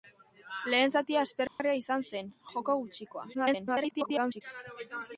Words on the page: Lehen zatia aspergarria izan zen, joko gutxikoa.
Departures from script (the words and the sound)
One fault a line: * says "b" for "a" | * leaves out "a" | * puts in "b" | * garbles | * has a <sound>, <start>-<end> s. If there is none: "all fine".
* has a dropout, 1.5-1.6 s
* garbles